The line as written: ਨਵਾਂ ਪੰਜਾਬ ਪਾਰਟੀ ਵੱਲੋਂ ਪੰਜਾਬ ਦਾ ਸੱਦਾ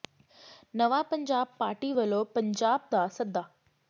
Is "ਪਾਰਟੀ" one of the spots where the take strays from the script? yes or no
no